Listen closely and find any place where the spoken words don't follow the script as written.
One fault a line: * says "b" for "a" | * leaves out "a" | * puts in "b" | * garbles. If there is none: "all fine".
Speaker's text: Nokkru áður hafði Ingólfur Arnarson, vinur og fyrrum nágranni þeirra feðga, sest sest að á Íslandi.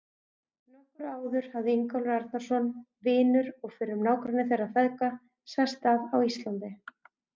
* leaves out "sest"